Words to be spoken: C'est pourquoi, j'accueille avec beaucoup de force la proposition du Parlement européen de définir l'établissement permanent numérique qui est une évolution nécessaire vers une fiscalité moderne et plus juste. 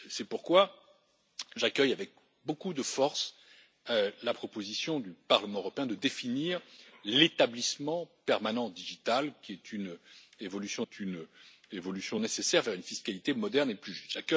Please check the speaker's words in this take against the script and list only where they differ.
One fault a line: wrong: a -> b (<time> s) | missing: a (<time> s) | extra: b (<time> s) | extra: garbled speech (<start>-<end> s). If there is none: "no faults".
extra: est une évolution (10.8 s)